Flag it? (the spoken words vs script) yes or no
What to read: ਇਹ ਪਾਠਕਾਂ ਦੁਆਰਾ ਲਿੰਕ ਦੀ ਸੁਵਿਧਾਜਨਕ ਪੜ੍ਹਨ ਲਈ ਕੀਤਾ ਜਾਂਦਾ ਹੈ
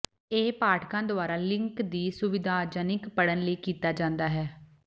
no